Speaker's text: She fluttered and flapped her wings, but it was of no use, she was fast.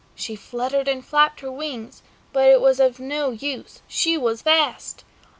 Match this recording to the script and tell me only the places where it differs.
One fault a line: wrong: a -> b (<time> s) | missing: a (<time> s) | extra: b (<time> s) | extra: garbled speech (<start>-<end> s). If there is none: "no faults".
no faults